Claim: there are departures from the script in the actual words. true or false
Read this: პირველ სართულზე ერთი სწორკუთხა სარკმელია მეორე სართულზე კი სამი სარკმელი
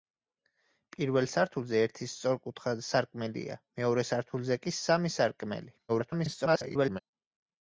true